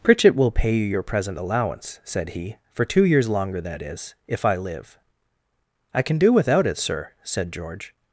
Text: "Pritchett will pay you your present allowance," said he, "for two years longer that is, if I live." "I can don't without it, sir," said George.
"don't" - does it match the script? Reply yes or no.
no